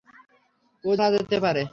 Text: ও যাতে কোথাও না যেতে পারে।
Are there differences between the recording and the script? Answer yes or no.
yes